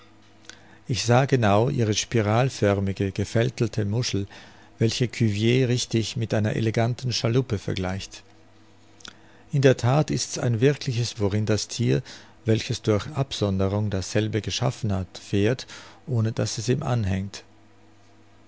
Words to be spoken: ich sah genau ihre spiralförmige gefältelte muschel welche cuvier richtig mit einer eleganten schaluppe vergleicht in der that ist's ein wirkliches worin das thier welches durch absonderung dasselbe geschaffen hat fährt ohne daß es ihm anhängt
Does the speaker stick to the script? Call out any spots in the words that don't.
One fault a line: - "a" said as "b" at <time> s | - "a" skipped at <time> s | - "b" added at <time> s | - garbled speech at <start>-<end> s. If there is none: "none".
none